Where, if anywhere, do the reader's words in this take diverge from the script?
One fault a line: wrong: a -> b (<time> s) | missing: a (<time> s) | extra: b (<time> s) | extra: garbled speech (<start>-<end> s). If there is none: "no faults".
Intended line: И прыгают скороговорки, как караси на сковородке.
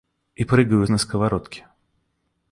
missing: скороговорки как караси (0.9 s)